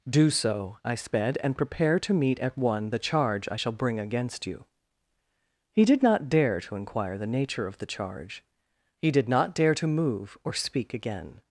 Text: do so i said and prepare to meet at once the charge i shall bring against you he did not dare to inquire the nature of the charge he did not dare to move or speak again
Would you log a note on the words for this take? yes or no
yes